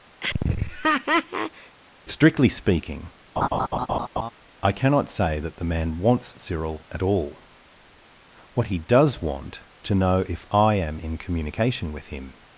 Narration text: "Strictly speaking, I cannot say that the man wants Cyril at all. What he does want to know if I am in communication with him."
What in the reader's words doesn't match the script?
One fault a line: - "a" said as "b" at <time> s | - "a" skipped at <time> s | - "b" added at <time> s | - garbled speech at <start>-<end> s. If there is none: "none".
none